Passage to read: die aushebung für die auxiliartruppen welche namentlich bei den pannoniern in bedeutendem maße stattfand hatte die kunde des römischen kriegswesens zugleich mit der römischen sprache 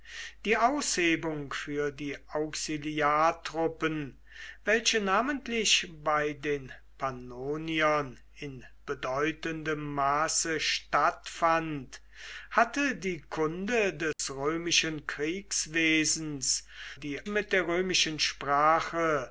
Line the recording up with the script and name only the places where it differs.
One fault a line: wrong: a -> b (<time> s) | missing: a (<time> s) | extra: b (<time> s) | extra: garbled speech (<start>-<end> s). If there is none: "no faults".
wrong: zugleich -> die (16.9 s)